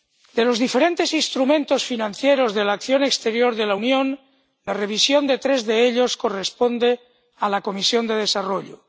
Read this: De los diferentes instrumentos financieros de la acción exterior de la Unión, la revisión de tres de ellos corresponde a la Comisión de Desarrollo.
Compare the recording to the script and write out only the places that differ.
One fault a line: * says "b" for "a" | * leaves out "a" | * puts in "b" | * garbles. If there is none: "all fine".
all fine